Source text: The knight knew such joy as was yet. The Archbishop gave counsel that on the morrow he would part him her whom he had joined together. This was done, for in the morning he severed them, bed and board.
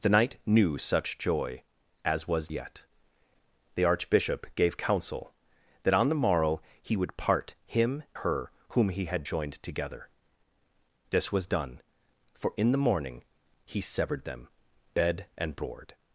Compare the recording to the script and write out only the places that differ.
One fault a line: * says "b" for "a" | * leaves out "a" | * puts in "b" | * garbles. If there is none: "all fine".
all fine